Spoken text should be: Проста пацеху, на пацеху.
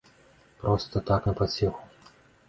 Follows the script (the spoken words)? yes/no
no